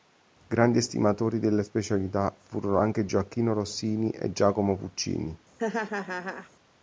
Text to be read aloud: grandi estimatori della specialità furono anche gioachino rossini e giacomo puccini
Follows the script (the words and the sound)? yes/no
no